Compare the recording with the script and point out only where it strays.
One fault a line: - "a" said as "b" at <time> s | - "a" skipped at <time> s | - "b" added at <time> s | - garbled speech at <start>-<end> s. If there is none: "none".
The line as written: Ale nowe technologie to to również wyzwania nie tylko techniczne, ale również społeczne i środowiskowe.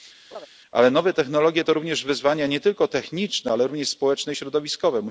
- "to" skipped at 1.7 s